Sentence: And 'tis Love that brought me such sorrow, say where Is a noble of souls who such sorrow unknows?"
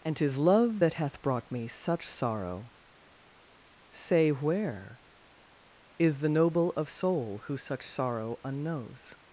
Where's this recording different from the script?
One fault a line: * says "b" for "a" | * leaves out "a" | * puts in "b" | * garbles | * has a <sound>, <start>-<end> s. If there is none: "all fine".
* puts in "hath"
* says "the" for "a"
* says "soul" for "souls"